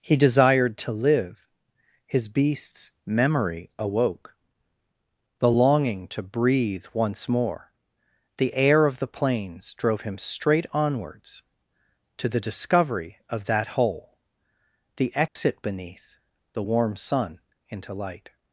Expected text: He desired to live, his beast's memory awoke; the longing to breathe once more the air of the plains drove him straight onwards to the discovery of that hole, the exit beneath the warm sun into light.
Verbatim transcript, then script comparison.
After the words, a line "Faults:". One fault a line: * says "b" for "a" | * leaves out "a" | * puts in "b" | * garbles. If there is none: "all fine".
He desired to live, his beast's memory awoke; the longing to breathe once more the air of the plains drove him straight onwards to the discovery of that hole, the exit beneath the warm sun into light.
Faults:
all fine